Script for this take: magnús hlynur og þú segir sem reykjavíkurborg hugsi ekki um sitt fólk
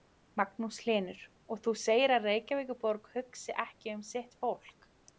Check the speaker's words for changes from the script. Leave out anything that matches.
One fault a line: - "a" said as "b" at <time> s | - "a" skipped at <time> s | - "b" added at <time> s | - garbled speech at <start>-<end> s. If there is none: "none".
- "sem" said as "að" at 2.2 s